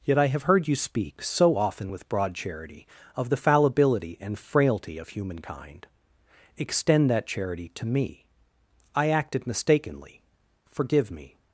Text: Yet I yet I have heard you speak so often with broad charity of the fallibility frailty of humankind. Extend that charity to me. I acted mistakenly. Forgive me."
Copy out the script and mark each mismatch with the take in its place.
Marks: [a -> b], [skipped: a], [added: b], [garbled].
Yet I [skipped: yet I] have heard you speak so often with broad charity of the fallibility [added: and] frailty of humankind. Extend that charity to me. I acted mistakenly. Forgive me."